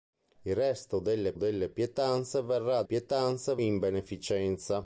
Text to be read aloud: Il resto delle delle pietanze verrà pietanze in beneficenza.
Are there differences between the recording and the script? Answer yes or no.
no